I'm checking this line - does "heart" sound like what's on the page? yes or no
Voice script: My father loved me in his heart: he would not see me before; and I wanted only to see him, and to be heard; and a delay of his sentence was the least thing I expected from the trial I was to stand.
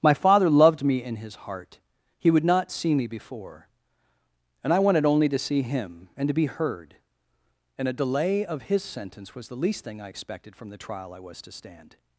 yes